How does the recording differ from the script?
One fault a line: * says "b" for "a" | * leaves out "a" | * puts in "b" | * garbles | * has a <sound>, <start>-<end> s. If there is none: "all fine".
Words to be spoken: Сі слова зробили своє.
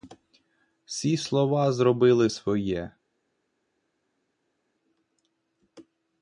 all fine